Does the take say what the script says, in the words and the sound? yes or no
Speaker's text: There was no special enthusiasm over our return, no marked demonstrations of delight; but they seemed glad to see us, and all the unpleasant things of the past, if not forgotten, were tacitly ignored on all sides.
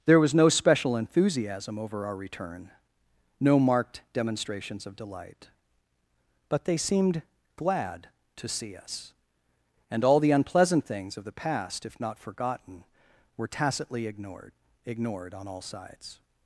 no